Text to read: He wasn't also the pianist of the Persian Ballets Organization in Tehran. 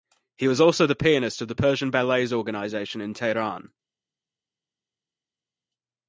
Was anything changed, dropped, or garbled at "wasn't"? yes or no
yes